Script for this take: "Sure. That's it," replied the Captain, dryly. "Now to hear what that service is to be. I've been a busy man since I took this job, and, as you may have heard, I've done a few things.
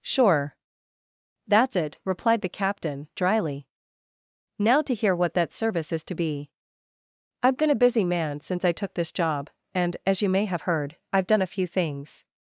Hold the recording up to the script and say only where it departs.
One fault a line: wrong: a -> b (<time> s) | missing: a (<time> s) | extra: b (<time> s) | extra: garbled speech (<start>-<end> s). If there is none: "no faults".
no faults